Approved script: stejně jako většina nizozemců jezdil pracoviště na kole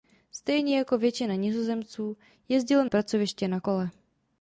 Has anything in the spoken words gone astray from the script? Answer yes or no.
no